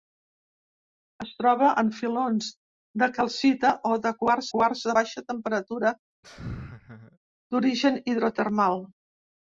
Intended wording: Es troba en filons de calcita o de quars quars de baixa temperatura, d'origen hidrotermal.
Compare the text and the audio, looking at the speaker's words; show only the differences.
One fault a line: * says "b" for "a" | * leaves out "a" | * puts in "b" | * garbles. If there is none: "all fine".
all fine